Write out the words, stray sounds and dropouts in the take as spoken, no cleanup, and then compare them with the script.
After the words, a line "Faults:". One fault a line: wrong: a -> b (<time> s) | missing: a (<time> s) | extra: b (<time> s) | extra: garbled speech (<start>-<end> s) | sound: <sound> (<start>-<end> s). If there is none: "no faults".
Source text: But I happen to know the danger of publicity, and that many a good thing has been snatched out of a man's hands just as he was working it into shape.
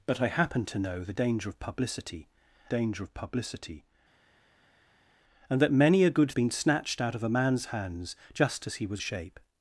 But I happen to know the danger of publicity danger of publicity, and that many a good been snatched out of a man's hands just as he was shape.
Faults:
extra: danger of publicity (2.7 s)
missing: thing has (6.3 s)
missing: working it into (9.0 s)